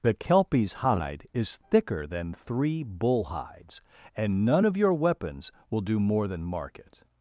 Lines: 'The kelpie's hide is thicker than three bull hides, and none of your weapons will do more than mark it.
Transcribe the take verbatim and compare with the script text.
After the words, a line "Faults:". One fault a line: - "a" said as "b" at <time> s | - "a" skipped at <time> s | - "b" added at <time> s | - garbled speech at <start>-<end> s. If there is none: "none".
'The kelpie's hide is thicker than three bull hides, and none of your weapons will do more than mark it.
Faults:
none